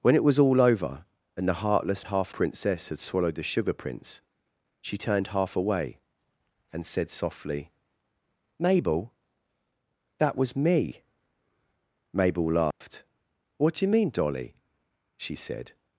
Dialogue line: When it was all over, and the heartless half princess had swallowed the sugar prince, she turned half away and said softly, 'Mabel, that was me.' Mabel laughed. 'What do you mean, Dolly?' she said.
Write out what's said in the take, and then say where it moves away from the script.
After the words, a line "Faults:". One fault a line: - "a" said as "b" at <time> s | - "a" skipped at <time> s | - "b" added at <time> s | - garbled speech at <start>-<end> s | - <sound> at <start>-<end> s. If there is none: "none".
When it was all over, and the heartless half princess had swallowed the sugar prince, she turned half away and said softly, 'Mabel, that was me.' Mabel laughed. 'What do you mean, Dolly?' she said.
Faults:
- dropout at 12.7-12.8 s